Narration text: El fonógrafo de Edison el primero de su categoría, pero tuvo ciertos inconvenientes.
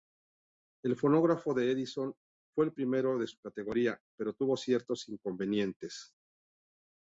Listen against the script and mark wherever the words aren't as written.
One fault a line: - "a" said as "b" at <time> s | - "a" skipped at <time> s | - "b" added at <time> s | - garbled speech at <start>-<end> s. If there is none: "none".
- "fue" added at 2.5 s